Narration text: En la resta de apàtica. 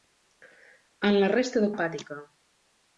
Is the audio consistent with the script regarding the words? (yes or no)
yes